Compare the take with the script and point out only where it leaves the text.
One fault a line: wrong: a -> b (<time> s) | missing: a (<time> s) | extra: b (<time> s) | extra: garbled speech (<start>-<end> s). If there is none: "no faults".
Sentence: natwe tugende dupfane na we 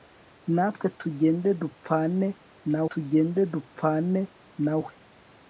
extra: tugende dupfane na (2.9 s)